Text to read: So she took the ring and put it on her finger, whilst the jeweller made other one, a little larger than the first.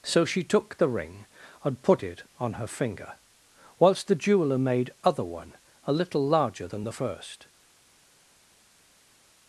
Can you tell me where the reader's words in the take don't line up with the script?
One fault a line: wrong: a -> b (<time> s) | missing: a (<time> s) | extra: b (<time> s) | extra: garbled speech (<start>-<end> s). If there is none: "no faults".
no faults